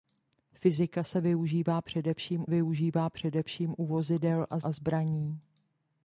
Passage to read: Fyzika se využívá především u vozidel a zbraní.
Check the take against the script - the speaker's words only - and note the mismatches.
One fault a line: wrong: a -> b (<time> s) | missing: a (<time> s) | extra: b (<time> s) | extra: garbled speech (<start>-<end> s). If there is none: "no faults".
extra: využívá především (2.5 s)
extra: a (4.6 s)